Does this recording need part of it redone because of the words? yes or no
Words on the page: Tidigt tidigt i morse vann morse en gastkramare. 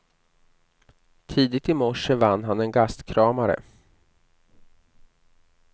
yes